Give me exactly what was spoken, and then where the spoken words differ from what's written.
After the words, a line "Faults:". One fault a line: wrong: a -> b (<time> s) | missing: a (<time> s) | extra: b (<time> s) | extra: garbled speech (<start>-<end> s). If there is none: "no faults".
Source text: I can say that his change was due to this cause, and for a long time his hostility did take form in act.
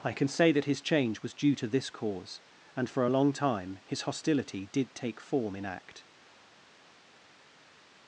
I can say that his change was due to this cause, and for a long time his hostility did take form in act.
Faults:
no faults